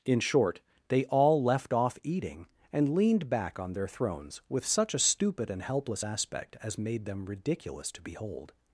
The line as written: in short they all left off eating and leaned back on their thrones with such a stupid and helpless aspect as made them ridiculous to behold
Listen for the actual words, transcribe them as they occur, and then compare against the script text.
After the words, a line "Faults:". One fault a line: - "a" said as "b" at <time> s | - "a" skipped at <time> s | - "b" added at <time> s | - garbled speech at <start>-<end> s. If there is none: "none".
in short they all left off eating and leaned back on their thrones with such a stupid and helpless aspect as made them ridiculous to behold
Faults:
none